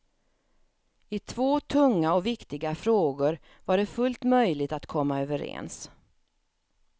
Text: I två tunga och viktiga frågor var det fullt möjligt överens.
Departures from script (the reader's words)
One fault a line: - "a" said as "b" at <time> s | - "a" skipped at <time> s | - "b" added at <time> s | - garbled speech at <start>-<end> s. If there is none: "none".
- "att komma" added at 4.7 s